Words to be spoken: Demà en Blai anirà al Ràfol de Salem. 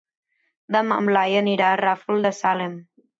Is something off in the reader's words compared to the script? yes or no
no